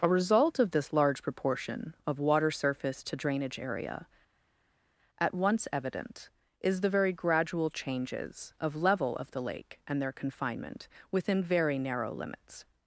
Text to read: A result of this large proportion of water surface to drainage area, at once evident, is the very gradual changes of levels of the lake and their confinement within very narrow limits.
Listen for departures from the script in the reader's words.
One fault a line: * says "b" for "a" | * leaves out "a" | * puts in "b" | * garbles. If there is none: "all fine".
* says "level" for "levels"